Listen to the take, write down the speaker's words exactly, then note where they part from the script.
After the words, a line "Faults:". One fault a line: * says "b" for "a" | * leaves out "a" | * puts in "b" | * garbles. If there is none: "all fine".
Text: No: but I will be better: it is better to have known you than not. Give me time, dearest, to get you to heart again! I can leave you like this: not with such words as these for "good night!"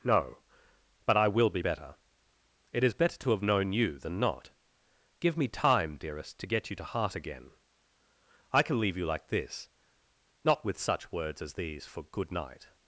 No: but I will be better: it is better to have known you than not. Give me time, dearest, to get you to heart again! I can leave you like this: not with such words as these for "good night!"
Faults:
all fine